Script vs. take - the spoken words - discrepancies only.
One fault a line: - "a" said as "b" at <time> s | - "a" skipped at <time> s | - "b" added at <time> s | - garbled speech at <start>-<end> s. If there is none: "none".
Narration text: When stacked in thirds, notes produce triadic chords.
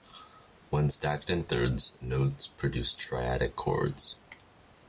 none